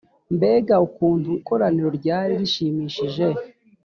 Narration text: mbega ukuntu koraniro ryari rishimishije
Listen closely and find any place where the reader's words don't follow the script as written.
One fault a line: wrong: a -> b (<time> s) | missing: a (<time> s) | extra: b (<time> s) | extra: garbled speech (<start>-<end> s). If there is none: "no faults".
no faults